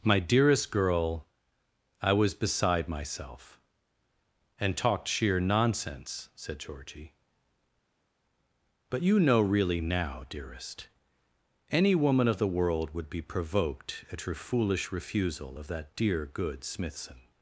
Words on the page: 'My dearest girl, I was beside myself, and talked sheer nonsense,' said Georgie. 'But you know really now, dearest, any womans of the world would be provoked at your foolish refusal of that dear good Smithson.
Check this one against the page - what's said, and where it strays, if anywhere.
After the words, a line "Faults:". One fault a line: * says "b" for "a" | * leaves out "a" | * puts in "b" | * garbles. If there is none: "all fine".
'My dearest girl, I was beside myself, and talked sheer nonsense,' said Georgie. 'But you know really now, dearest, any woman of the world would be provoked at your foolish refusal of that dear good Smithson.
Faults:
* says "woman" for "womans"